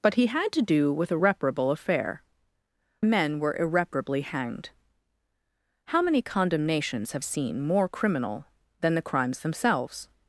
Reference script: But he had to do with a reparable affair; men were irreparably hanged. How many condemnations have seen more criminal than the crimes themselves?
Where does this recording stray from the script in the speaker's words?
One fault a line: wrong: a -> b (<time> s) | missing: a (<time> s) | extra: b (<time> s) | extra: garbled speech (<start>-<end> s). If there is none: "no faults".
no faults